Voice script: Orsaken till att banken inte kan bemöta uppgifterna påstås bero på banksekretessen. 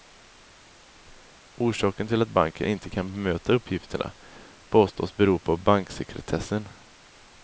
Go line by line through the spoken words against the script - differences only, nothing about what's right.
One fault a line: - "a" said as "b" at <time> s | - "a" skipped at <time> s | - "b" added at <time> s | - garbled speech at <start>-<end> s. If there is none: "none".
none